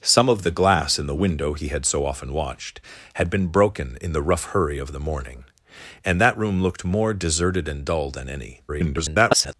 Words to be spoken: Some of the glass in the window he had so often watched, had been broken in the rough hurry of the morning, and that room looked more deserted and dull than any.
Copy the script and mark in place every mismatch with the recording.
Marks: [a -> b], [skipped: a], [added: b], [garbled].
Some of the glass in the window he had so often watched, had been broken in the rough hurry of the morning, and that room looked more deserted and dull than any. [garbled]